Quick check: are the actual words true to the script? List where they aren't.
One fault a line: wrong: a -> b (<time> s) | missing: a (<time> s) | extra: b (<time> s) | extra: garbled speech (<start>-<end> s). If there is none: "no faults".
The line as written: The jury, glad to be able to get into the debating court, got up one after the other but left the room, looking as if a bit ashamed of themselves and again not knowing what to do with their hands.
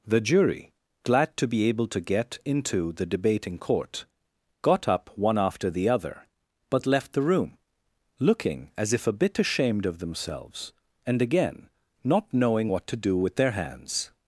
no faults